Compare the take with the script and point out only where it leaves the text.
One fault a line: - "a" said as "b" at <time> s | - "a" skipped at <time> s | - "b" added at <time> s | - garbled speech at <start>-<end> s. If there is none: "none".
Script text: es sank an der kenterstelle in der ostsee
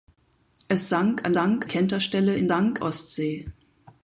- "der" said as "sank" at 1.3 s
- "der" said as "sank" at 2.5 s